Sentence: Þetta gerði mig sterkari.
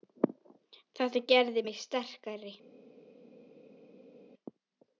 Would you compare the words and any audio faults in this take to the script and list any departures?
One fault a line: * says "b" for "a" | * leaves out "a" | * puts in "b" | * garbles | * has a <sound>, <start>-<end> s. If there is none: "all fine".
all fine